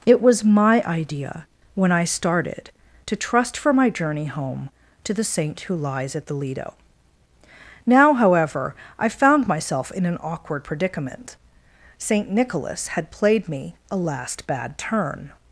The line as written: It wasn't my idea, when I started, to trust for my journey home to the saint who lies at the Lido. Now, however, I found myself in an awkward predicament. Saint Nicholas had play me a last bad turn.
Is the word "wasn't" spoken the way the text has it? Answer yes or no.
no